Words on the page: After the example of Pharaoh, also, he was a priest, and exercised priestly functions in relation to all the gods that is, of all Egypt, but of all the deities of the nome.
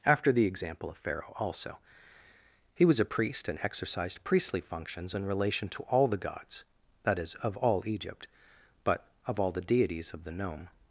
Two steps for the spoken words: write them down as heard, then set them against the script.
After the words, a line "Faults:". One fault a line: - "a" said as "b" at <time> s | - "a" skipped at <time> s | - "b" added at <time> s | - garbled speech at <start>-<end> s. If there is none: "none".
After the example of Pharaoh, also, he was a priest, and exercised priestly functions in relation to all the gods that is, of all Egypt, but of all the deities of the nome.
Faults:
none